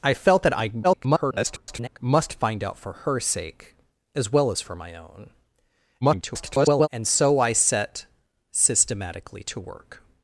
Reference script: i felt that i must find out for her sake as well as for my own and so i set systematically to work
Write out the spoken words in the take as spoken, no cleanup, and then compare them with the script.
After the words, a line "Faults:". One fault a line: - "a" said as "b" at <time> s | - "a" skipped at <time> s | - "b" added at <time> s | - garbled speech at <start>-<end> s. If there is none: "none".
i felt that i [garbled] must find out for her sake as well as for my own [garbled] and so i set systematically to work
Faults:
- garbled speech at 0.8-2.0 s
- garbled speech at 6.0-6.9 s